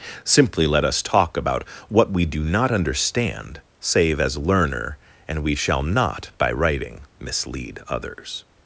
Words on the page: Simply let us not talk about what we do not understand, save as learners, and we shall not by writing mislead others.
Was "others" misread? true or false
false